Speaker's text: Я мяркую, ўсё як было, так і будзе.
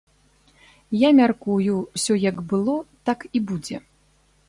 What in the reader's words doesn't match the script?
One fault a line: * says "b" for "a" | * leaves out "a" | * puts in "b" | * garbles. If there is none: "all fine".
all fine